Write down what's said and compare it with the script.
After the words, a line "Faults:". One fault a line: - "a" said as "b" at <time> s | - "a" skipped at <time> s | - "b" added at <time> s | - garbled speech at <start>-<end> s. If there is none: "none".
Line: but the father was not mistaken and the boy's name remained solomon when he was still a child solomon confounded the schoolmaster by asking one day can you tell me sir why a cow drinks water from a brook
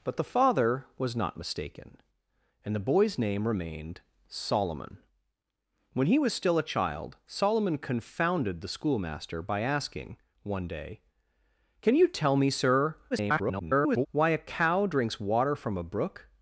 but the father was not mistaken and the boy's name remained solomon when he was still a child solomon confounded the schoolmaster by asking one day can you tell me sir [garbled] why a cow drinks water from a brook
Faults:
- garbled speech at 13.1-14.1 s